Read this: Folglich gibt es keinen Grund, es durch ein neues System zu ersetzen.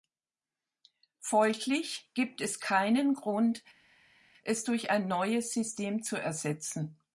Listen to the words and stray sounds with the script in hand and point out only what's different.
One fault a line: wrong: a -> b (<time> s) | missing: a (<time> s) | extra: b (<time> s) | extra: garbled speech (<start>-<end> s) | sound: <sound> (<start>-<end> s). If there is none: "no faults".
no faults